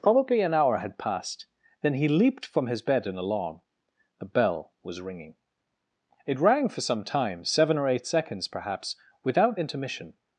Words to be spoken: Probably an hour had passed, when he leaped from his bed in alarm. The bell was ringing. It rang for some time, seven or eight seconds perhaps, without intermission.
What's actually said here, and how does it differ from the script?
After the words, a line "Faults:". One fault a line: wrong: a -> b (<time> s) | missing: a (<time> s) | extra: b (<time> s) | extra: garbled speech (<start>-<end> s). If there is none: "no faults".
Probably an hour had passed, then he leaped from his bed in alarm. The bell was ringing. It rang for some time, seven or eight seconds perhaps, without intermission.
Faults:
wrong: when -> then (1.8 s)